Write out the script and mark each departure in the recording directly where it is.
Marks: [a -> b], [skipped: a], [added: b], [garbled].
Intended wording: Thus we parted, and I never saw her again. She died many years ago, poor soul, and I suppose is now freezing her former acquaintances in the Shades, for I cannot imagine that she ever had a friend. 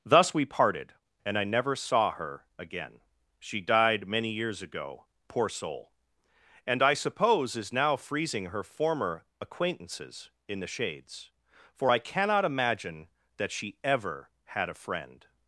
Thus we parted, and I never saw her again. She died many years ago, poor soul, and I suppose is now freezing her former acquaintances in the Shades, for I cannot imagine that she ever had a friend.